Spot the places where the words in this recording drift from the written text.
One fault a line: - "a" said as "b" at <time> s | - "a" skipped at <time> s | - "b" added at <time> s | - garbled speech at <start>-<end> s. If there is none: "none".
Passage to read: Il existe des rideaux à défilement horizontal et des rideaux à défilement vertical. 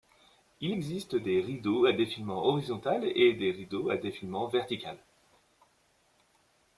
none